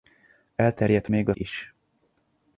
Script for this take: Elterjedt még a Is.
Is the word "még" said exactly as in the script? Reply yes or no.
yes